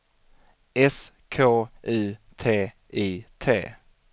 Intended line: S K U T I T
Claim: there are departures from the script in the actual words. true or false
false